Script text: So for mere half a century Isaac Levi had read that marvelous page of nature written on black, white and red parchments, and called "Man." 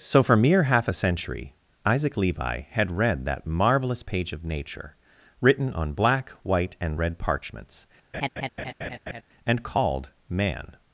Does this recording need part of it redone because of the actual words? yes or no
no